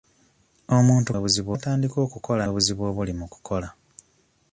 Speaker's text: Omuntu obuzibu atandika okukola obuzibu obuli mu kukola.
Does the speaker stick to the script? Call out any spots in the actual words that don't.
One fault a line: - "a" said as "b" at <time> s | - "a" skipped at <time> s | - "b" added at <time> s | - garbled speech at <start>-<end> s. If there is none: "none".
none